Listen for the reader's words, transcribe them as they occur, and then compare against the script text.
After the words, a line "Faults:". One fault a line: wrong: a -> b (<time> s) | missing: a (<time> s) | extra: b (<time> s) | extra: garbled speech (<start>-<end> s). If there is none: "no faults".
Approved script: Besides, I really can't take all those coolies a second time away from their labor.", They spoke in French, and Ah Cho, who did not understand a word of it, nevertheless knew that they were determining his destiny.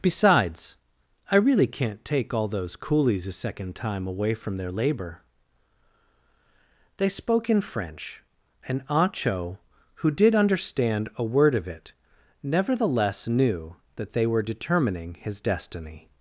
Besides, I really can't take all those coolies a second time away from their labor.", They spoke in French, and Ah Cho, who did understand a word of it, nevertheless knew that they were determining his destiny.
Faults:
missing: not (10.3 s)